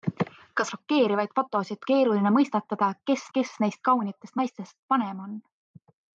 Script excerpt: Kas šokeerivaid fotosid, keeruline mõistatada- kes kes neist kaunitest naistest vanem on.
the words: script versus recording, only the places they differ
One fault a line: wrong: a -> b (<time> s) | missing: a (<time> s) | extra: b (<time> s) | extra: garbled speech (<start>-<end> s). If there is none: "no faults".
no faults